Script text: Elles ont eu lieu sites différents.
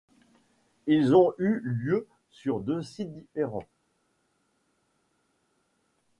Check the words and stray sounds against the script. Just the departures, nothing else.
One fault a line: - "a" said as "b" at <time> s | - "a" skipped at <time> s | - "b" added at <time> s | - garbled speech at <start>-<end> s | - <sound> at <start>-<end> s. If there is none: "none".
- "Elles" said as "Ils" at 0.9 s
- "sur deux" added at 2.3 s